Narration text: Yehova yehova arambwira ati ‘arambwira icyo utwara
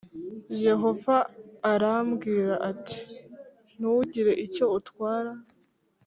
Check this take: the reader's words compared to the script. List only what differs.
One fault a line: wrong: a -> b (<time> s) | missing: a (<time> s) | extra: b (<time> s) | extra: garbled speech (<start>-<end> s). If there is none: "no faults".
missing: yehova (1.1 s)
wrong: arambwira -> ntugire (3.8 s)